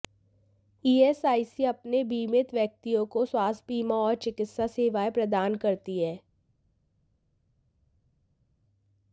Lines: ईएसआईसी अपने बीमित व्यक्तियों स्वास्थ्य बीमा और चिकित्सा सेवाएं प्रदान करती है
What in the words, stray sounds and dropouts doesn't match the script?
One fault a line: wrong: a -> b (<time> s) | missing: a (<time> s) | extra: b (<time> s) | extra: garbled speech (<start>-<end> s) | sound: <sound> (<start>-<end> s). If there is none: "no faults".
extra: को (3.1 s)